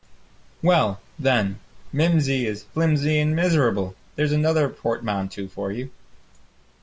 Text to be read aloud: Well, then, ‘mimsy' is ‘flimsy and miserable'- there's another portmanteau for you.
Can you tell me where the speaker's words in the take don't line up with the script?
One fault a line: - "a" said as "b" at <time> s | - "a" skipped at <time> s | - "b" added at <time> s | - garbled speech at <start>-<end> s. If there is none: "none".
none